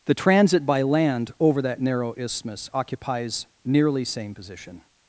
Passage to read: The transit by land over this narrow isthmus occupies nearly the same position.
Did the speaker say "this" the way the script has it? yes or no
no